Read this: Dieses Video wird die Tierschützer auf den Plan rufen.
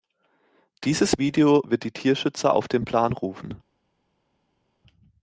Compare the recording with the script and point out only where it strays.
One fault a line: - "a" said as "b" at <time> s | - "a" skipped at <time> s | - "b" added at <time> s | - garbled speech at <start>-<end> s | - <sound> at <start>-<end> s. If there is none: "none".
none